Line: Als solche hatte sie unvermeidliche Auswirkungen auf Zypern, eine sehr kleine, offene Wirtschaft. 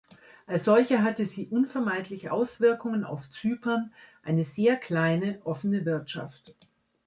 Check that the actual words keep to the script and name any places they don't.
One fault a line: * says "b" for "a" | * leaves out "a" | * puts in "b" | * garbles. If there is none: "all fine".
all fine